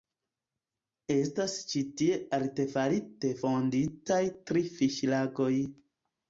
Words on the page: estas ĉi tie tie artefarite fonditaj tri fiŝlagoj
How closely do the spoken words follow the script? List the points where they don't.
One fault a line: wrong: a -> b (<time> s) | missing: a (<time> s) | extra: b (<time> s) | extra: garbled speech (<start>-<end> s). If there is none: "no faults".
missing: tie (2.2 s)